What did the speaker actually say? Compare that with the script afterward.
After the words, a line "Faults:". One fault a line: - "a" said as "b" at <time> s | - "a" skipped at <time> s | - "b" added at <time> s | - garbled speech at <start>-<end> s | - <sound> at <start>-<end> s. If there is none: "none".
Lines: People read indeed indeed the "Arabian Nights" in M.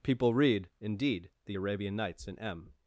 People read indeed the "Arabian Nights" in M.
Faults:
- "indeed" skipped at 1.3 s